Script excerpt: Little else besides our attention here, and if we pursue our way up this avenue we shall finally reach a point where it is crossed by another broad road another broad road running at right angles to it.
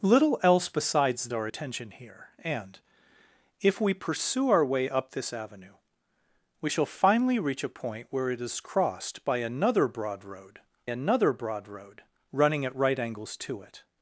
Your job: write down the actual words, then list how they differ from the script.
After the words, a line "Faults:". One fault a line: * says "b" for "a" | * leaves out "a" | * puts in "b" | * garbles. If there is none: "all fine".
Little else besides our attention here, and if we pursue our way up this avenue we shall finally reach a point where it is crossed by another broad road another broad road running at right angles to it.
Faults:
all fine